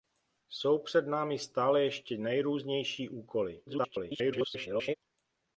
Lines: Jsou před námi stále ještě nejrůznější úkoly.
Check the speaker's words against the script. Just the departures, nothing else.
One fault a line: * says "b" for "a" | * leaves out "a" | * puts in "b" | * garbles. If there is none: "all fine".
* garbles